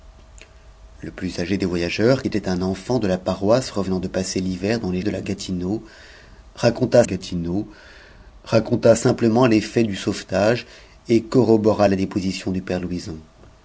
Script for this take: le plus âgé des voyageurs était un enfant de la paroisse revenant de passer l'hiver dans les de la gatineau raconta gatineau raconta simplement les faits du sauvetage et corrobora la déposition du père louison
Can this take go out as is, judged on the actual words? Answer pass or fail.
pass